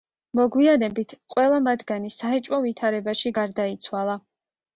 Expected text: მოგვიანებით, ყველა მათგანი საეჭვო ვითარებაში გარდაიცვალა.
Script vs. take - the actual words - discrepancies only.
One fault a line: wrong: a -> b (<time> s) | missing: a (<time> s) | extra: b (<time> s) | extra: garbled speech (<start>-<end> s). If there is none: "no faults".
no faults